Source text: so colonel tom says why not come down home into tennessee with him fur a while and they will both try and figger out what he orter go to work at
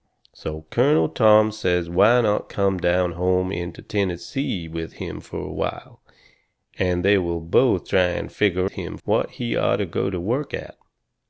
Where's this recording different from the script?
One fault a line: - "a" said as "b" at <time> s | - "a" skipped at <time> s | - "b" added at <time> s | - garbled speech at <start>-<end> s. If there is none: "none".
- "out" said as "him" at 8.7 s